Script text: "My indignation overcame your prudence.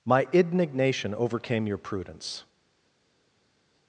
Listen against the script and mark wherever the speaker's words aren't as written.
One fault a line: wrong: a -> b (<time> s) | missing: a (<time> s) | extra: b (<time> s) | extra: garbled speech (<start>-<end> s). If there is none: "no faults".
no faults